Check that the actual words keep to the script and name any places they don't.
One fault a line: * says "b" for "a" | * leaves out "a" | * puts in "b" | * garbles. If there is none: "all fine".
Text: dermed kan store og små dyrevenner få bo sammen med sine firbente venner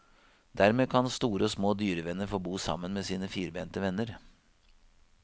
all fine